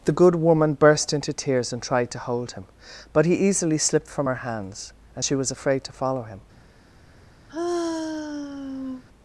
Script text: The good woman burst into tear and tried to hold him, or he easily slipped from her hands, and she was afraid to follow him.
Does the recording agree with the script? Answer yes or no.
no